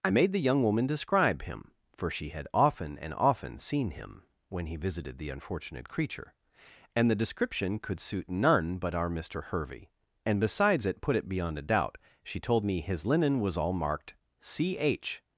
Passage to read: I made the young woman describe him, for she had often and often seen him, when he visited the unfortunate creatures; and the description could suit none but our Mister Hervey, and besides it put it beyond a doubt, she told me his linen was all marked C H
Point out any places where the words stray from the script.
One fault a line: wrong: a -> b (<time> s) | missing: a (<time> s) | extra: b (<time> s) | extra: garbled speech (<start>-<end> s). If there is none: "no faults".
wrong: creatures -> creature (5.9 s)